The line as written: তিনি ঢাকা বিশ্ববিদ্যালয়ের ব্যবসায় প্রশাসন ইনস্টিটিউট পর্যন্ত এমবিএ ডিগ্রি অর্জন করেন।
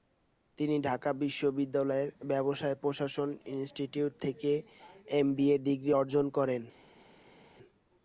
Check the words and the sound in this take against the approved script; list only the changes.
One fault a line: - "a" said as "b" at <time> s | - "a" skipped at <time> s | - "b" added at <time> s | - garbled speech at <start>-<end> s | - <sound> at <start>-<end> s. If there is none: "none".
- "পর্যন্ত" said as "থেকে" at 4.2 s